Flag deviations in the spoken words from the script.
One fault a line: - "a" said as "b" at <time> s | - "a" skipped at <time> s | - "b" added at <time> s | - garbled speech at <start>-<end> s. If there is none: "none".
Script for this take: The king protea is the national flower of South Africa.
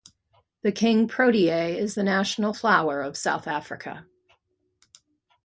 none